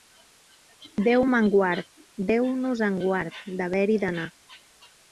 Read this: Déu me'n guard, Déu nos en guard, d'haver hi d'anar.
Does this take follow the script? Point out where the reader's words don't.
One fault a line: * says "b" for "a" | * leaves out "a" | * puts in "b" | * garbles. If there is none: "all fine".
all fine